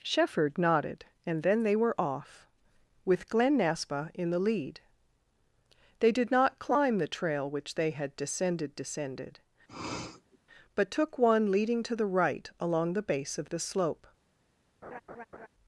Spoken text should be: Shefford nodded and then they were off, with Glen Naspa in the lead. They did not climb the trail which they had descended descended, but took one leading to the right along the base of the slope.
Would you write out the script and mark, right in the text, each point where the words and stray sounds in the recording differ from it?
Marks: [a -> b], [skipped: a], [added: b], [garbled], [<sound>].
Shefford nodded and then they were off, with Glen Naspa in the lead. They did not climb the trail which they had descended descended, [sniff] but took one leading to the right along the base of the slope. [laugh]